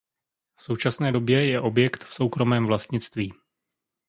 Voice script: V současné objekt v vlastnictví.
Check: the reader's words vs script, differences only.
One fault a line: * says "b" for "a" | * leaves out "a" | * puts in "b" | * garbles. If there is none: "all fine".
* puts in "době je"
* puts in "soukromém"